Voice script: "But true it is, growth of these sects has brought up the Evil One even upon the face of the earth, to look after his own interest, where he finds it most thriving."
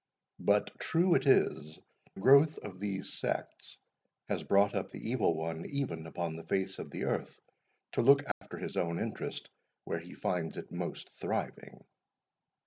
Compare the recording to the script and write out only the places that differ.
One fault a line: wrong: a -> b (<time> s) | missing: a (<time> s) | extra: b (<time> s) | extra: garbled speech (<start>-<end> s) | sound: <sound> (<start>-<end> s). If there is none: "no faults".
sound: dropout (8.3-8.4 s)